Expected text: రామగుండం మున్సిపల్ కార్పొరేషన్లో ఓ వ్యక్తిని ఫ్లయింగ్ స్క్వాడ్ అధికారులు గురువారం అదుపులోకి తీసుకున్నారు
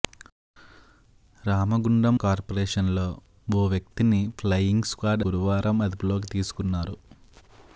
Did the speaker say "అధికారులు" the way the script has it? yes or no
no